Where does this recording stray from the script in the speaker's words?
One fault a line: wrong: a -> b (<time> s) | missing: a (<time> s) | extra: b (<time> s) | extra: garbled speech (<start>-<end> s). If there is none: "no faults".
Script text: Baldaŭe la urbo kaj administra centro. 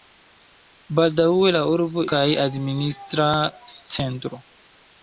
no faults